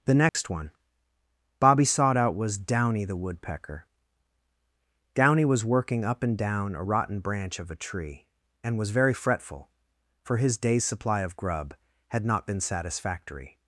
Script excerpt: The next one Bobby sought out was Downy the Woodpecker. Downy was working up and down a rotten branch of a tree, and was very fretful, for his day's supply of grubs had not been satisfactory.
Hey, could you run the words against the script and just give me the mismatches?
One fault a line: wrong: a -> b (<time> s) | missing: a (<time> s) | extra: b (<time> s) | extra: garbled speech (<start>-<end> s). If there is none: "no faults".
wrong: grubs -> grub (11.3 s)